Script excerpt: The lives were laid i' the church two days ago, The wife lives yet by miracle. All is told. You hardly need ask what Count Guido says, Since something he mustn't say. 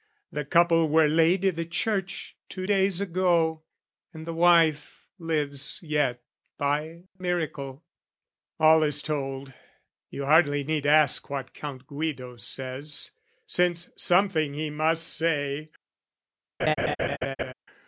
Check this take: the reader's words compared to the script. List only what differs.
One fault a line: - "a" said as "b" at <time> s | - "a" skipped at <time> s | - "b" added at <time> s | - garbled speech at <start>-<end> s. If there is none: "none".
- "lives" said as "couple" at 0.5 s
- "And" added at 4.1 s
- "mustn't" said as "must" at 14.7 s